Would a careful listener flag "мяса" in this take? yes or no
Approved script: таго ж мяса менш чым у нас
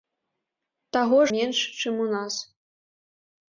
yes